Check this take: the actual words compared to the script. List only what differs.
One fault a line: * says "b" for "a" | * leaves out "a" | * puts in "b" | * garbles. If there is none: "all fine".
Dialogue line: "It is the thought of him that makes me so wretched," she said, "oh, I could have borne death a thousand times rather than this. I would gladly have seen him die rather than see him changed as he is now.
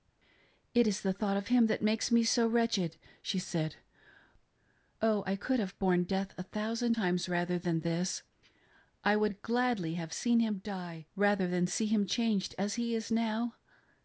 all fine